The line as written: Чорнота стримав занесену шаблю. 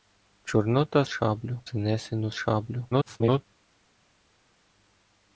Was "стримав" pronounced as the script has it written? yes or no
no